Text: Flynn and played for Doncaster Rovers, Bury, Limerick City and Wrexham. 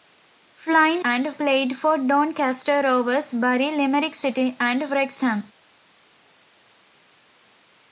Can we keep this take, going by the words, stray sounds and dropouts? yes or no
yes